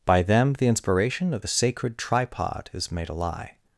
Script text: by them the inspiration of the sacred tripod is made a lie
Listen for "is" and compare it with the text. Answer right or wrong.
right